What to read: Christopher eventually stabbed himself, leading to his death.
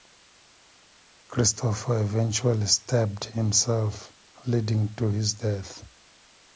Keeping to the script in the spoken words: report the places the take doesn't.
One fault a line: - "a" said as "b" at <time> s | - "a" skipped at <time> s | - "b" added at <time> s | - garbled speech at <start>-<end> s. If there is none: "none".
none